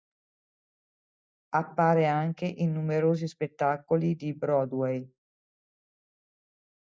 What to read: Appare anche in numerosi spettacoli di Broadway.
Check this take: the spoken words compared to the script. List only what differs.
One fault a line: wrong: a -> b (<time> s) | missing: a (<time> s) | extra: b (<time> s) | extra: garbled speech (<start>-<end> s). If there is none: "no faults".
no faults